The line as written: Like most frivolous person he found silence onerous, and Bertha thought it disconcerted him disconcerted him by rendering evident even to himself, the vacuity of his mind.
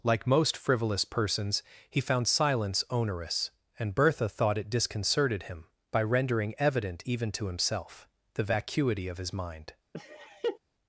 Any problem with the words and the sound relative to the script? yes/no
yes